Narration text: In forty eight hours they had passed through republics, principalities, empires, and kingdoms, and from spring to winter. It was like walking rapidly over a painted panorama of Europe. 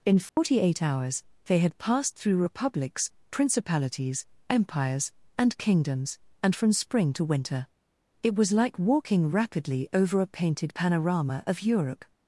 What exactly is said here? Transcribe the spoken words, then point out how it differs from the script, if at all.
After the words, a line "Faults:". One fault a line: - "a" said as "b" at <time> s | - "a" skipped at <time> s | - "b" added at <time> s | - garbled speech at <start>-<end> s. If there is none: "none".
In forty eight hours they had passed through republics, principalities, empires, and kingdoms, and from spring to winter. It was like walking rapidly over a painted panorama of Europe.
Faults:
none